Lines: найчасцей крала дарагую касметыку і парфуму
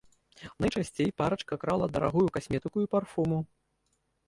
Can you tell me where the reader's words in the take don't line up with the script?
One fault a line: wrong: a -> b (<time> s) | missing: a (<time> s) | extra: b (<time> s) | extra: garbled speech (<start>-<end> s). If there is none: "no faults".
extra: парачка (1.2 s)